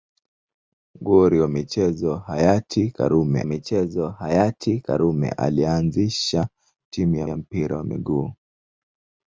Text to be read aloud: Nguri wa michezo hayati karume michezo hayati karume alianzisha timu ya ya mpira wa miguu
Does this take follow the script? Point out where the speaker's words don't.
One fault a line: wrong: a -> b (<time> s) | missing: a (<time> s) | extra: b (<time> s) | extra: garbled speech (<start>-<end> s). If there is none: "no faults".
no faults